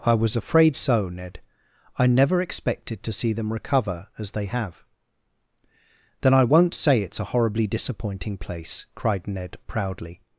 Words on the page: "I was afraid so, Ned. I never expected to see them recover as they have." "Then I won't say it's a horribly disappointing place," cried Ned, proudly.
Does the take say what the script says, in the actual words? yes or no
yes